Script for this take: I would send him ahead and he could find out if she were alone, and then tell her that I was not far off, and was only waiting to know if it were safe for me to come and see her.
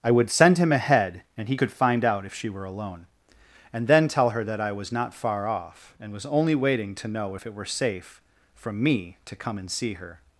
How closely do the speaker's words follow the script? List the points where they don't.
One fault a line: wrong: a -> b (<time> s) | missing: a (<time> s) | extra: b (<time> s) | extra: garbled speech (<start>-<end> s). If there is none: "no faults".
wrong: for -> from (8.6 s)